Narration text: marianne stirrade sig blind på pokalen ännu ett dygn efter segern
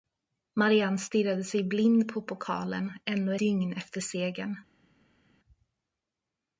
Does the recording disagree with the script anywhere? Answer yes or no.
yes